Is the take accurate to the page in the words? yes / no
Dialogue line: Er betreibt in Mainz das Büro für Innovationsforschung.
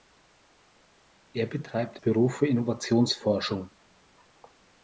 no